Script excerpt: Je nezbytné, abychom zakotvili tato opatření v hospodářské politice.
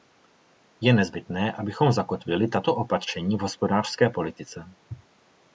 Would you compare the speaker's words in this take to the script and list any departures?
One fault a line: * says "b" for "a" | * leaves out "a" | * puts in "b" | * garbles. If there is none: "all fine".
all fine